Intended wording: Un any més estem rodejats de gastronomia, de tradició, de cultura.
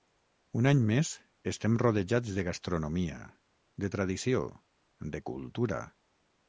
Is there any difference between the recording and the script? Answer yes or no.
no